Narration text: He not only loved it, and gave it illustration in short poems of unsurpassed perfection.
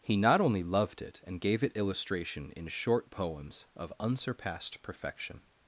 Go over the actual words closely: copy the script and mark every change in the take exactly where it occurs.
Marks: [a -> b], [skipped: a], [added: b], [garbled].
He not only loved it, and gave it illustration in short poems of unsurpassed perfection.